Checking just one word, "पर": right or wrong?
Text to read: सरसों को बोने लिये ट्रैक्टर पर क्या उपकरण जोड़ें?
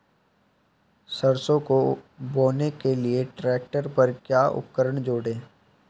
right